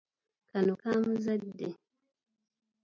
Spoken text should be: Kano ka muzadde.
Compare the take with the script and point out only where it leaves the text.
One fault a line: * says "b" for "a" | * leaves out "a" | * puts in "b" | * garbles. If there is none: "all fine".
all fine